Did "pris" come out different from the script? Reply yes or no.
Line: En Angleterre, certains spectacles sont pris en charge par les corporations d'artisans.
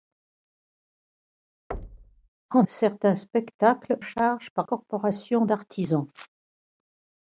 yes